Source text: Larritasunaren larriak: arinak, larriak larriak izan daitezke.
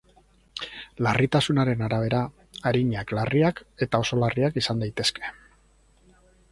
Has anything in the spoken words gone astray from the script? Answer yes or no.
yes